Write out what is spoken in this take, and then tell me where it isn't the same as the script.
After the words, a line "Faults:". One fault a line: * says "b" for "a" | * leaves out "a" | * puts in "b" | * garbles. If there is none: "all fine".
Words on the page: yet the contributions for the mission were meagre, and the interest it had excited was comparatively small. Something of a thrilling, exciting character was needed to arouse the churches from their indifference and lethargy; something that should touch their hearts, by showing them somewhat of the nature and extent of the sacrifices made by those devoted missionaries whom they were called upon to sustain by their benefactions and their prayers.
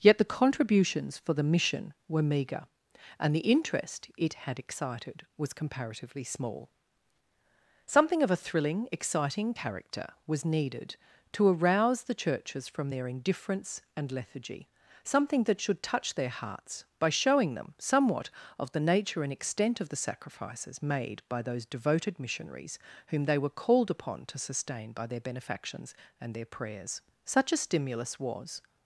yet the contributions for the mission were meagre, and the interest it had excited was comparatively small. Something of a thrilling, exciting character was needed to arouse the churches from their indifference and lethargy; something that should touch their hearts, by showing them somewhat of the nature and extent of the sacrifices made by those devoted missionaries whom they were called upon to sustain by their benefactions and their prayers. "Such a stimulus was
Faults:
* puts in "Such a stimulus was"